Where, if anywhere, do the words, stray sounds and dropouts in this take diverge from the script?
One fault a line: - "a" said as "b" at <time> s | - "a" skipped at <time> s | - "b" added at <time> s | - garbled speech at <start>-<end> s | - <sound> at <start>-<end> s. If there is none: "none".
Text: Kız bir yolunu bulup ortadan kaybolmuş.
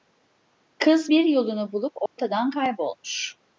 - dropout at 2.1-2.2 s